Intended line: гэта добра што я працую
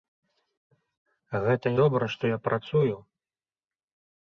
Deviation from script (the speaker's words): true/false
false